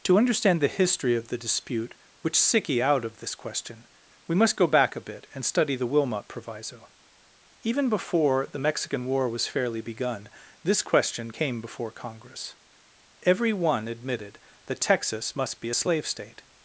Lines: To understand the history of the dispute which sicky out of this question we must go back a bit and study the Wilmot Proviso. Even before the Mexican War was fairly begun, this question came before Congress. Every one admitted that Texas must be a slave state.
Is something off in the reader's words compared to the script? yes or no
no